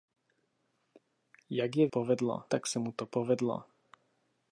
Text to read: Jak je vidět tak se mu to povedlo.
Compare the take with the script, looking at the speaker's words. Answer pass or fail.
fail